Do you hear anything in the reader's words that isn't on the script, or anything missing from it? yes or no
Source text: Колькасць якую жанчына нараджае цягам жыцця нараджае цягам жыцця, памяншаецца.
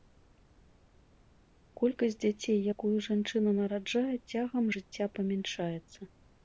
yes